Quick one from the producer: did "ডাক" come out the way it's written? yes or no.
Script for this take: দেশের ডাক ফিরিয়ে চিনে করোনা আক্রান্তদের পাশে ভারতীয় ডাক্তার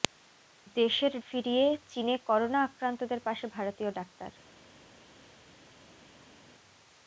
no